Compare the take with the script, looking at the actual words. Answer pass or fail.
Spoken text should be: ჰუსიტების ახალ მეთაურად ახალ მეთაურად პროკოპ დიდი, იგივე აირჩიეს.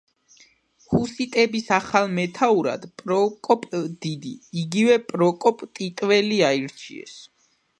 fail